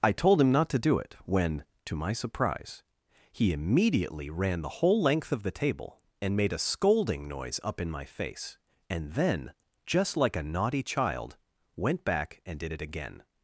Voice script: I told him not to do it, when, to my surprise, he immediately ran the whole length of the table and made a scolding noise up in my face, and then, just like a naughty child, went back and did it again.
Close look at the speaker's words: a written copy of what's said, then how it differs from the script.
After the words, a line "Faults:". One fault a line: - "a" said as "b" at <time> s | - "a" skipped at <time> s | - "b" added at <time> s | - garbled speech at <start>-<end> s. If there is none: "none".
I told him not to do it, when, to my surprise, he immediately ran the whole length of the table and made a scolding noise up in my face, and then, just like a naughty child, went back and did it again.
Faults:
none